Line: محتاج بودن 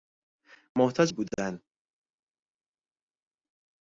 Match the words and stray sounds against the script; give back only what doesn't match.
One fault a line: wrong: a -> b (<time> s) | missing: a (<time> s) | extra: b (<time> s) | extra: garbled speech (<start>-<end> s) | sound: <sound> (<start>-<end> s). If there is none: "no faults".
no faults